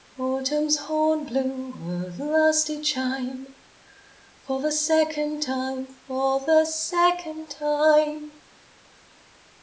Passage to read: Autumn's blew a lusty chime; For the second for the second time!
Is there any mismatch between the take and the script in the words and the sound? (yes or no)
yes